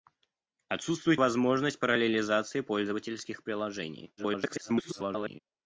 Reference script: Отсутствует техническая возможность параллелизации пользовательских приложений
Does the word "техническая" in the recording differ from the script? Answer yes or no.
yes